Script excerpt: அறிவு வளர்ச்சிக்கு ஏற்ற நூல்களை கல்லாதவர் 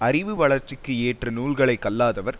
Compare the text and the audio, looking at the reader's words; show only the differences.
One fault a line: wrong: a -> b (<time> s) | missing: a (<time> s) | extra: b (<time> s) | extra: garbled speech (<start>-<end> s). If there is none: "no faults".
no faults